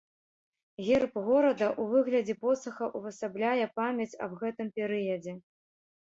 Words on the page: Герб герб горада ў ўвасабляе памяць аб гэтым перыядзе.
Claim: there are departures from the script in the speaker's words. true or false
true